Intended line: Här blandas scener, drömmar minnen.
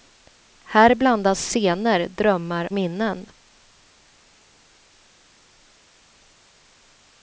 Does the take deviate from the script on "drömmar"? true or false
false